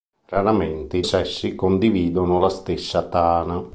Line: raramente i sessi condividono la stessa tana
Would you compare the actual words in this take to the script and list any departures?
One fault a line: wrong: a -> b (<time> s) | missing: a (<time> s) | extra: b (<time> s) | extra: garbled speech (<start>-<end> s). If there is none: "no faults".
no faults